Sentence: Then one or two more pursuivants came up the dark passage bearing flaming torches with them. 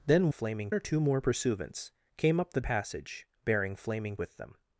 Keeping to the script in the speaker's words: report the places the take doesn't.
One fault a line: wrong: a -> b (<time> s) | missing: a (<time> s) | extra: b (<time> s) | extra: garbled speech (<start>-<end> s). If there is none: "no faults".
wrong: one -> flaming (0.3 s)
missing: dark (2.6 s)
missing: torches (4.2 s)